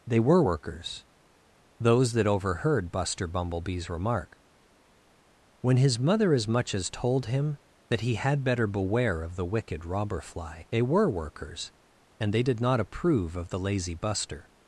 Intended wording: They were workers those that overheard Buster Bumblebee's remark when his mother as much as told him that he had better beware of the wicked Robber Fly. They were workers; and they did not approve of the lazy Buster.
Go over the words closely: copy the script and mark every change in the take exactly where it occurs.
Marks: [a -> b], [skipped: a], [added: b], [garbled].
They were workers those that overheard Buster Bumblebee's remark when his mother as much as told him that he had better beware of the wicked Robber Fly. They were workers; and they did not approve of the lazy Buster.